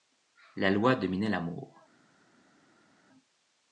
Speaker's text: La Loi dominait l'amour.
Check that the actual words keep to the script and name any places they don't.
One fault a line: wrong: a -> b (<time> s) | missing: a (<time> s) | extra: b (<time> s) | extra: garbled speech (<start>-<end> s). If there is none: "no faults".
no faults